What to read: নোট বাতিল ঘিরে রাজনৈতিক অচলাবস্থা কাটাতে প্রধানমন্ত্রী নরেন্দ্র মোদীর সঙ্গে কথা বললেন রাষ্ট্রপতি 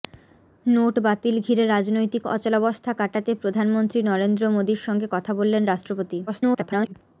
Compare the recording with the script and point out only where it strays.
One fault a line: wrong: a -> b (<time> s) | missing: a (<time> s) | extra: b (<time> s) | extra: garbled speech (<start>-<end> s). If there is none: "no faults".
extra: garbled speech (6.3-6.9 s)